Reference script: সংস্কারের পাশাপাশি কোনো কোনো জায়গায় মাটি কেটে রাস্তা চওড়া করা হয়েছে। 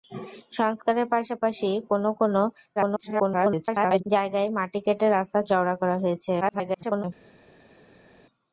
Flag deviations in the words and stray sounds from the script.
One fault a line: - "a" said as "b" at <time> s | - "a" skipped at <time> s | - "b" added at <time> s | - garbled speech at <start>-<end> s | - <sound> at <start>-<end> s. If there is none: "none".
- garbled speech at 2.8-4.0 s
- garbled speech at 6.4-7.0 s